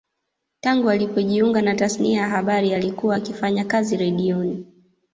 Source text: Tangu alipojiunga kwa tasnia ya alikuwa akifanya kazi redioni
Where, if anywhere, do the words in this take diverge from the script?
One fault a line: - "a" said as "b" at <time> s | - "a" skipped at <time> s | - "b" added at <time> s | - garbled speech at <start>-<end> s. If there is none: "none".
- "kwa" said as "na" at 1.6 s
- "habari" added at 2.3 s